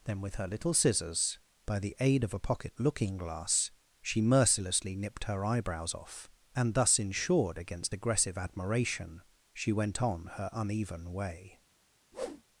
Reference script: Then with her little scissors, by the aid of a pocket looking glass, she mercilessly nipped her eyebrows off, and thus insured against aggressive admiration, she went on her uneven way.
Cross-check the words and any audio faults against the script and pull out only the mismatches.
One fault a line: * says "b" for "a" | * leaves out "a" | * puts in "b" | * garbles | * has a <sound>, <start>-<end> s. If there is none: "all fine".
* has a whoosh, 12.1-12.4 s